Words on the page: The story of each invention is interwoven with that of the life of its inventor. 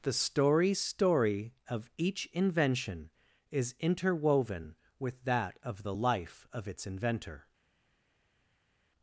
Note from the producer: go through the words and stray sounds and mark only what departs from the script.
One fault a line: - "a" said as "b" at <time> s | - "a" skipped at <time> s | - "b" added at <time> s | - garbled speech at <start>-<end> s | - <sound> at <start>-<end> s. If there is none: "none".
- "story" added at 0.7 s